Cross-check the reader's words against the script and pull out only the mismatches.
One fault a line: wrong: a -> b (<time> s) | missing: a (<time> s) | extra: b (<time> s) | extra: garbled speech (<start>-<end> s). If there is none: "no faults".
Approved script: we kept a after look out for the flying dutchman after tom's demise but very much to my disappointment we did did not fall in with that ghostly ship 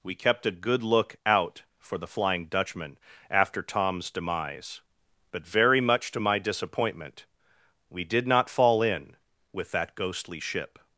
wrong: after -> good (0.5 s)
missing: did (8.3 s)